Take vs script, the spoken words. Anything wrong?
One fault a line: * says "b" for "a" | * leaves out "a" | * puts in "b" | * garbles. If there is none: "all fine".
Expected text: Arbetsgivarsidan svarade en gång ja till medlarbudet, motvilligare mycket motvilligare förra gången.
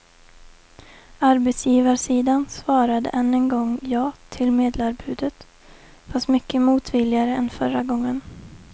* puts in "än"
* says "fast" for "motvilligare"
* puts in "än"